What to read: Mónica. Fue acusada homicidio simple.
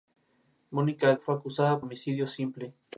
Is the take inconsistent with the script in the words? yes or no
no